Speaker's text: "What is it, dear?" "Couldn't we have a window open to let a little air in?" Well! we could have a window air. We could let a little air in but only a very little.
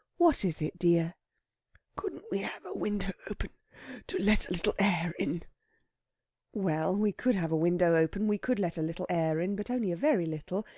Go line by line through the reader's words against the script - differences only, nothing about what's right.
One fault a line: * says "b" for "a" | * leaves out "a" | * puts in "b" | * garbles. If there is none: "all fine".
* says "open" for "air"